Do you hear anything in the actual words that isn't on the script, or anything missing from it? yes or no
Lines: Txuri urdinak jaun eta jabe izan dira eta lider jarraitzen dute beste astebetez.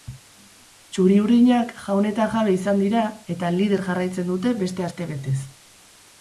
no